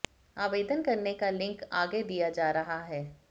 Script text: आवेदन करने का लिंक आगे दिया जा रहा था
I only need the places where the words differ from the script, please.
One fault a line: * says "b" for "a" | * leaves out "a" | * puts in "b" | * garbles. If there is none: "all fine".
* says "है" for "था"